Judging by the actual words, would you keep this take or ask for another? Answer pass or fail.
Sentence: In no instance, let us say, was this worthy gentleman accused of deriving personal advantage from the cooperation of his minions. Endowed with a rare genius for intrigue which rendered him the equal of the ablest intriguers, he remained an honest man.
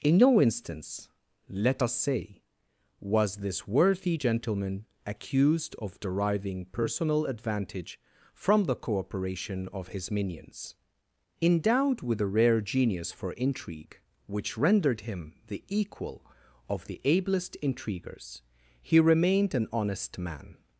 pass